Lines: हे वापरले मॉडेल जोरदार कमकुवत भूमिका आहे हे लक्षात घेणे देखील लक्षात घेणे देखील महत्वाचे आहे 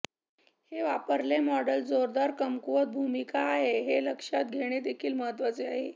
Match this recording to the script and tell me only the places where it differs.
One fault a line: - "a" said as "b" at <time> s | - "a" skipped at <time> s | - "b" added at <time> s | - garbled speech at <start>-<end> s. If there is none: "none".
- "लक्षात घेणे देखील" skipped at 5.1 s